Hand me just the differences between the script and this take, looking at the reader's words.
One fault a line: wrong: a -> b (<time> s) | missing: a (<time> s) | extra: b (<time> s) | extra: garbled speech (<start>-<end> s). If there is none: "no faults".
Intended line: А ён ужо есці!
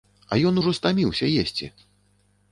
extra: стаміўся (0.8 s)